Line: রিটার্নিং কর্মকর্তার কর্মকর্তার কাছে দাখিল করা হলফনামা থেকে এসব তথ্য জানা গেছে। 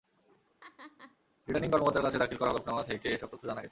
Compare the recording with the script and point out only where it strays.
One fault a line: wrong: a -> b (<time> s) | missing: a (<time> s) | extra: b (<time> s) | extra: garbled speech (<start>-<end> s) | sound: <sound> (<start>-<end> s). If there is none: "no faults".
sound: laugh (0.6-1.2 s)
missing: কর্মকর্তার (2.1 s)